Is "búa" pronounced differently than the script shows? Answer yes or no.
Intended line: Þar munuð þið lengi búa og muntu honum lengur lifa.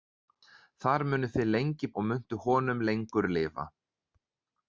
yes